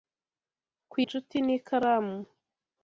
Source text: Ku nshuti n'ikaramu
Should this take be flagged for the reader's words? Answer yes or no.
no